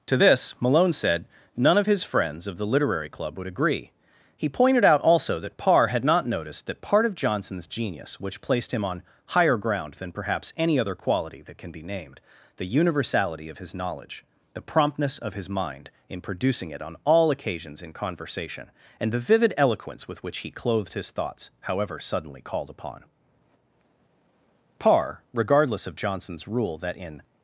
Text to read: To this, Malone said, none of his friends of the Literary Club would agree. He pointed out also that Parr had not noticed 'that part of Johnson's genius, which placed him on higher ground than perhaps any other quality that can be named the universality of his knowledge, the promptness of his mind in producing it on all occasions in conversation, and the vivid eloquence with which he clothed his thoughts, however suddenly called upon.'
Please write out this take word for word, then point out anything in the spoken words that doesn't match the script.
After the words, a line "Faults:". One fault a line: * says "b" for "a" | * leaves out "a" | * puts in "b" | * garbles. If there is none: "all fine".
To this, Malone said, none of his friends of the Literary Club would agree. He pointed out also that Parr had not noticed 'that part of Johnson's genius, which placed him on higher ground than perhaps any other quality that can be named the universality of his knowledge, the promptness of his mind in producing it on all occasions in conversation, and the vivid eloquence with which he clothed his thoughts, however suddenly called upon.' Parr, regardless of Johnson's rule that 'in
Faults:
* puts in "Parr regardless of Johnson's rule that in"